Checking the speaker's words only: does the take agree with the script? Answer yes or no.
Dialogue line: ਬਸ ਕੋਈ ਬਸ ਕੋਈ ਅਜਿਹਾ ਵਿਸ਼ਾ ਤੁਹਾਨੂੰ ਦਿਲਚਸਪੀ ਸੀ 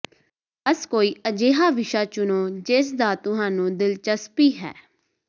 no